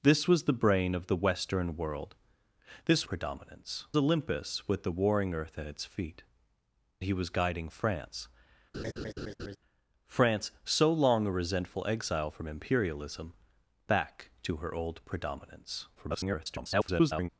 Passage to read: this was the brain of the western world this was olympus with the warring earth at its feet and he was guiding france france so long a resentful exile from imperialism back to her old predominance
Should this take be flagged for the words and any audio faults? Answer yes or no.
yes